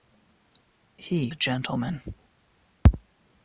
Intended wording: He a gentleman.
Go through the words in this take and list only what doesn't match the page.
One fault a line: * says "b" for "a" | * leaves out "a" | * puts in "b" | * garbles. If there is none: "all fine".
all fine